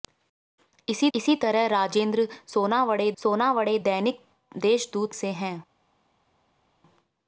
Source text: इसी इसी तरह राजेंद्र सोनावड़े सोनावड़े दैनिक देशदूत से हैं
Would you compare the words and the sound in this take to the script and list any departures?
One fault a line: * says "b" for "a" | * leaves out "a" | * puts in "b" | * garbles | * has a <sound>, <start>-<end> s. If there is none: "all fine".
all fine